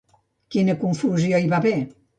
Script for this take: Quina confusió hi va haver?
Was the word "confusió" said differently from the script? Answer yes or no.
no